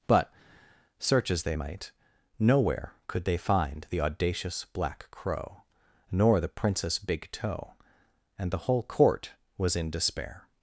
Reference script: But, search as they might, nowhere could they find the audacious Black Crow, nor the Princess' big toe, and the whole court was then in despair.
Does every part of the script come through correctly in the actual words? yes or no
no